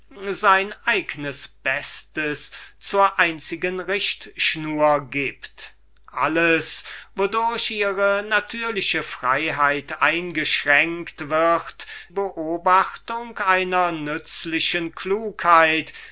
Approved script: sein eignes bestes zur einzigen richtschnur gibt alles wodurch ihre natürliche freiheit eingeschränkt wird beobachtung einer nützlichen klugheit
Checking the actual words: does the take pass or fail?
pass